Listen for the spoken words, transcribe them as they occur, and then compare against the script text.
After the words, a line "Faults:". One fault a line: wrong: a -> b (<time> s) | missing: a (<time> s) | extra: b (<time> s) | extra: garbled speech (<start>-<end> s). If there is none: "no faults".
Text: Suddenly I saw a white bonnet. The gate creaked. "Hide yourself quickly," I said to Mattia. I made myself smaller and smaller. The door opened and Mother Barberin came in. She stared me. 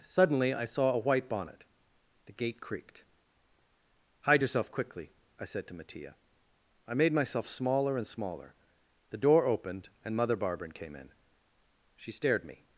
Suddenly I saw a white bonnet. The gate creaked. "Hide yourself quickly," I said to Mattia. I made myself smaller and smaller. The door opened and Mother Barberin came in. She stared me.
Faults:
no faults